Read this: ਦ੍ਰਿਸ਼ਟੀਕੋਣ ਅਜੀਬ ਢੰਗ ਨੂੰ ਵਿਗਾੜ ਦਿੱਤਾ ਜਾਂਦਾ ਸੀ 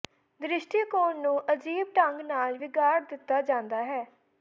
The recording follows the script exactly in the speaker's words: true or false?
false